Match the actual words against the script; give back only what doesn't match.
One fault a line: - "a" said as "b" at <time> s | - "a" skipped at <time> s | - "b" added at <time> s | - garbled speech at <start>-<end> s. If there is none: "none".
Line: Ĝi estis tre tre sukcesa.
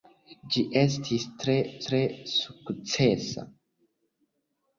none